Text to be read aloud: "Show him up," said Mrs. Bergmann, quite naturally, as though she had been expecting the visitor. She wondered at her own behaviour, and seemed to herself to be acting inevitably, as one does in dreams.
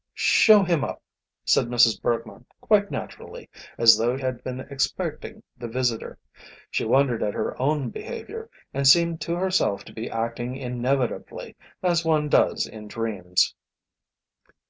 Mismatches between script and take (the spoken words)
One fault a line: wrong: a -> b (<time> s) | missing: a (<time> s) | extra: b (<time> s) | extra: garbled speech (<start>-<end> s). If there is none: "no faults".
missing: she (4.2 s)